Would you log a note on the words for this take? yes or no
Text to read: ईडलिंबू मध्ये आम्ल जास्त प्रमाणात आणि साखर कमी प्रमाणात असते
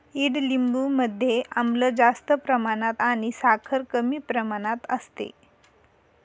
no